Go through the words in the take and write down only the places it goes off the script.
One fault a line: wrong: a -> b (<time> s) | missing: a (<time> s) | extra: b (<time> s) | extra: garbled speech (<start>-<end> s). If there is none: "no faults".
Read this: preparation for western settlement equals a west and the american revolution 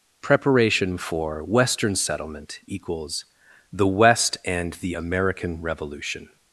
wrong: a -> the (3.7 s)